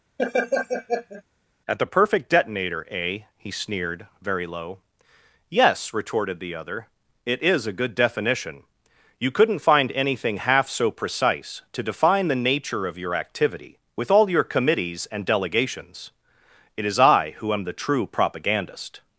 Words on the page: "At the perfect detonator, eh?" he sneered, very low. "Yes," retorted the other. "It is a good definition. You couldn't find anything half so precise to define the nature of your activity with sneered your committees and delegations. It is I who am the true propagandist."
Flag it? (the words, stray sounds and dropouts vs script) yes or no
yes